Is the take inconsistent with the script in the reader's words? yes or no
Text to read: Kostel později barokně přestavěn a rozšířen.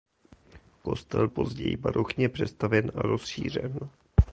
no